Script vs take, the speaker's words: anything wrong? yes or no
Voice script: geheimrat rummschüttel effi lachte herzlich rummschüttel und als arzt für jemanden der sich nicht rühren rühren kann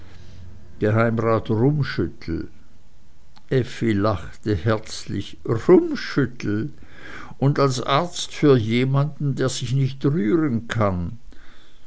yes